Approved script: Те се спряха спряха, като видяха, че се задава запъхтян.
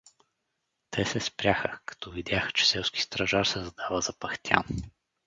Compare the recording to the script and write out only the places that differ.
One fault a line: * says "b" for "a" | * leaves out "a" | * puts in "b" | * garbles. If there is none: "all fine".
* leaves out "спряха"
* puts in "селски стражар"